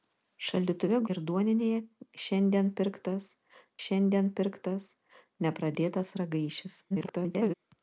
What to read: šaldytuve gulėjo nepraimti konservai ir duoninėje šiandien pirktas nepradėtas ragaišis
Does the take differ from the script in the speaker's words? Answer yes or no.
yes